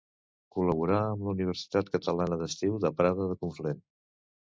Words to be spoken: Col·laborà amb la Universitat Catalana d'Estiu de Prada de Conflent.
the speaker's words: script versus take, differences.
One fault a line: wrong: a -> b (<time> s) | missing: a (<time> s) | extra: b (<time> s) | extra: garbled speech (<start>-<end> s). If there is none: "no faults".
no faults